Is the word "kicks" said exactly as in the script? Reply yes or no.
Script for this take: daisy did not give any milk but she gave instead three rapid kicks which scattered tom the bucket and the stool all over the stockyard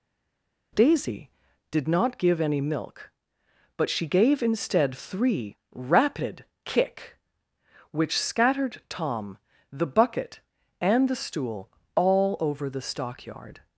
no